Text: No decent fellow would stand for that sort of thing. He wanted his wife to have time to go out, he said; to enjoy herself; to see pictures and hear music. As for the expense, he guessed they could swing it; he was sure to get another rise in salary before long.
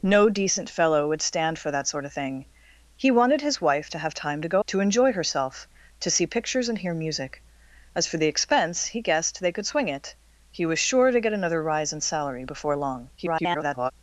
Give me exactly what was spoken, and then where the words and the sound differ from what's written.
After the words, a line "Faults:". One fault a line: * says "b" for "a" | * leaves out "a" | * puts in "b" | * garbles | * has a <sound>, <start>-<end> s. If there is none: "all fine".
No decent fellow would stand for that sort of thing. He wanted his wife to have time to go; to enjoy herself; to see pictures and hear music. As for the expense, he guessed they could swing it; he was sure to get another rise in salary before long. [garbled]
Faults:
* leaves out "out he said"
* garbles